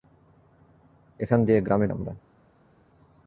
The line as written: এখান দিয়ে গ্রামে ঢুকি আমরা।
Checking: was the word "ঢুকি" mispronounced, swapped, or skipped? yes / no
yes